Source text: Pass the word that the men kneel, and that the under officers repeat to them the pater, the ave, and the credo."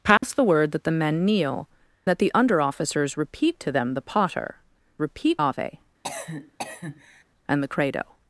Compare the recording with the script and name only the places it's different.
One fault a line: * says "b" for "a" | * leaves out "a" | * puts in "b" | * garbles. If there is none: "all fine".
* leaves out "and"
* says "repeat" for "the"